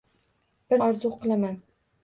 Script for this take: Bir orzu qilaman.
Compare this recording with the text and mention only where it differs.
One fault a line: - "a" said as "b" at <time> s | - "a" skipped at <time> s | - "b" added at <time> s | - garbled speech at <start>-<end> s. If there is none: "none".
none